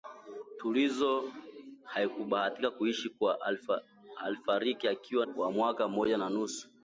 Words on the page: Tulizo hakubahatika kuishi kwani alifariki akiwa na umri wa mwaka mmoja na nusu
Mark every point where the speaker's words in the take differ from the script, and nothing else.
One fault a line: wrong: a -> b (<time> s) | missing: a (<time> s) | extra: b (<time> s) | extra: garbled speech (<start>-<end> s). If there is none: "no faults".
missing: na umri (5.2 s)